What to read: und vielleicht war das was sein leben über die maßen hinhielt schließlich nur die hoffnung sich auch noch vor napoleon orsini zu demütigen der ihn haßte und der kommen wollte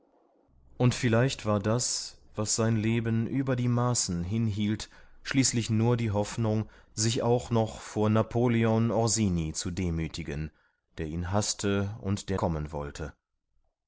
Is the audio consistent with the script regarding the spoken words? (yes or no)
yes